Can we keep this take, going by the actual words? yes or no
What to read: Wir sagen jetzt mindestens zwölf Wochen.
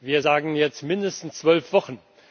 yes